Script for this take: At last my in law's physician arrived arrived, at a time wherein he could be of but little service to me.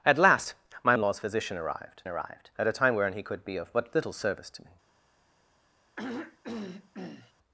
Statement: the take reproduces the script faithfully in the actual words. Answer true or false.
true